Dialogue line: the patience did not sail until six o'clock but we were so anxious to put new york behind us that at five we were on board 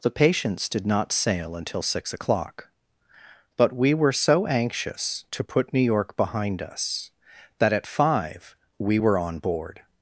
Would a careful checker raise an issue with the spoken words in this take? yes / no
no